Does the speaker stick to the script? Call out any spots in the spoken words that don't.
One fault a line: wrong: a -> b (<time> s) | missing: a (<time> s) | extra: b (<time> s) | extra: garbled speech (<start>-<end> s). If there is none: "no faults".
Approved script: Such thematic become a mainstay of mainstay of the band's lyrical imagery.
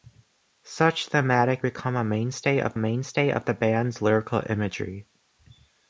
no faults